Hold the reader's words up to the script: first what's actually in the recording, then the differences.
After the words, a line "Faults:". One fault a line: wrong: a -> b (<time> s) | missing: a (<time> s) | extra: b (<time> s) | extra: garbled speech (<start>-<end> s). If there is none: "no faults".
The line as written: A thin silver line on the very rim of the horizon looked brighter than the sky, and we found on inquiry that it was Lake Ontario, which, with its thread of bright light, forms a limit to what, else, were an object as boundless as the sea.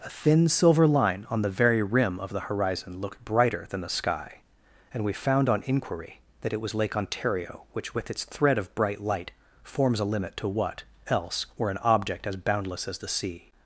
A thin silver line on the very rim of the horizon looked brighter than the sky, and we found on inquiry that it was Lake Ontario, which, with its thread of bright light, forms a limit to what, else, were an object as boundless as the sea.
Faults:
no faults